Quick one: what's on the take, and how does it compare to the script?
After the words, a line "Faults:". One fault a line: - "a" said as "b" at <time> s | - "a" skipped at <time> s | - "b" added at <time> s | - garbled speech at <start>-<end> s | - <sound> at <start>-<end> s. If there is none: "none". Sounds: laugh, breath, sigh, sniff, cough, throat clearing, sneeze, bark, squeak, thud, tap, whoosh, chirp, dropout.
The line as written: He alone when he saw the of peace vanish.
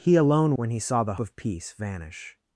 He alone when he saw the of peace vanish.
Faults:
none